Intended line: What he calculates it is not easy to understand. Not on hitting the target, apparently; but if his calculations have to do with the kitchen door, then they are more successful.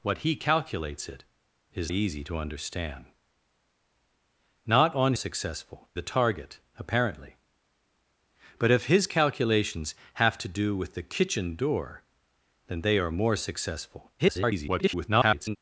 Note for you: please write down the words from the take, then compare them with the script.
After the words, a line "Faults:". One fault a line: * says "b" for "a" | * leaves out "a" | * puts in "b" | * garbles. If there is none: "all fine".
What he calculates it is easy to understand. Not on successful the target, apparently; but if his calculations have to do with the kitchen door, then they are more successful. [garbled]
Faults:
* leaves out "not"
* says "successful" for "hitting"
* garbles